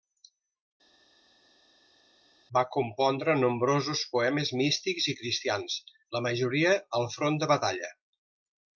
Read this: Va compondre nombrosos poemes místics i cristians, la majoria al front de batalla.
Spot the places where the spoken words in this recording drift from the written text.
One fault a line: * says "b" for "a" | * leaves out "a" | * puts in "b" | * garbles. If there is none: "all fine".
all fine